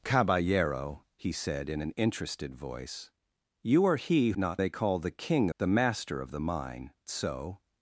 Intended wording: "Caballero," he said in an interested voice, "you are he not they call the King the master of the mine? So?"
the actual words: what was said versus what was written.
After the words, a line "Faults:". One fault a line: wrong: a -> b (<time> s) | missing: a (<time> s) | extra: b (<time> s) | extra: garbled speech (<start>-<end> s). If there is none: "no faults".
"Caballero," he said in an interested voice, "you are he not they call the King the master of the mine? So?"
Faults:
no faults